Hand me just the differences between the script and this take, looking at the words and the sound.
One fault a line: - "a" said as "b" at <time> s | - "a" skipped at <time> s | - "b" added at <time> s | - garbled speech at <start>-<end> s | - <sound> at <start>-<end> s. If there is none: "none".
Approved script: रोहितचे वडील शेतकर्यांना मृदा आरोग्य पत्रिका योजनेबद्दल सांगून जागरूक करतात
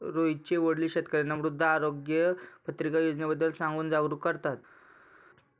none